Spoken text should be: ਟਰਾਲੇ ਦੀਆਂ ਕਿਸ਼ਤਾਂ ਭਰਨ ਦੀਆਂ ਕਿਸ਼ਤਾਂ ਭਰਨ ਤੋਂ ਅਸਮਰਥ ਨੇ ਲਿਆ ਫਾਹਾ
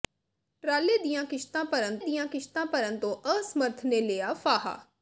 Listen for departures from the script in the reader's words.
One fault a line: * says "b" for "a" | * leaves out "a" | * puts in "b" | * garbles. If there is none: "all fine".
all fine